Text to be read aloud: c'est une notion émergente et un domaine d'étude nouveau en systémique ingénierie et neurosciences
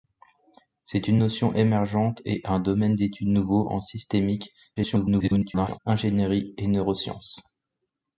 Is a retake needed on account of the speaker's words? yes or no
yes